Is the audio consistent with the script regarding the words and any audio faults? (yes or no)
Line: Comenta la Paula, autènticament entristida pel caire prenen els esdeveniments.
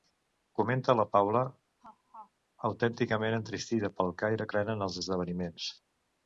no